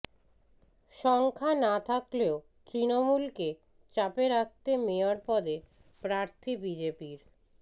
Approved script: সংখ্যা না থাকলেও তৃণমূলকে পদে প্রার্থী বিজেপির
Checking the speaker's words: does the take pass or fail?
fail